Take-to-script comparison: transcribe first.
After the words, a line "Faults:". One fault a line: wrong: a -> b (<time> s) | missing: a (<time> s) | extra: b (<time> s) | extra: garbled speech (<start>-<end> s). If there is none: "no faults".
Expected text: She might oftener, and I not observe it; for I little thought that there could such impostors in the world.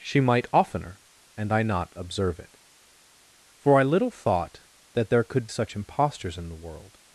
She might oftener, and I not observe it; for I little thought that there could such impostors in the world.
Faults:
no faults